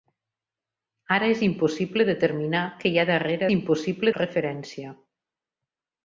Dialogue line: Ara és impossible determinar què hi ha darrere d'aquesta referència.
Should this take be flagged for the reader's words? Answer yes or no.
yes